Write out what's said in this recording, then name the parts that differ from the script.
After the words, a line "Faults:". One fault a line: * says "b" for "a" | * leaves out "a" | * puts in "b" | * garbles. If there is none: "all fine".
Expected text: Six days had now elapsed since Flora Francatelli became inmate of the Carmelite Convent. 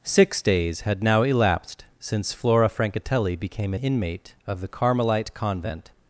Six days had now elapsed since Flora Francatelli became inmate of the Carmelite Convent.
Faults:
all fine